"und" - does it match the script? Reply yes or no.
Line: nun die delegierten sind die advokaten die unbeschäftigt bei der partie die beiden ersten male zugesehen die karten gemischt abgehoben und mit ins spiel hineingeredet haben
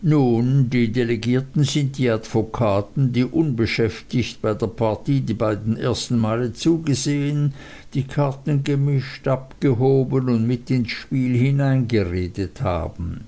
yes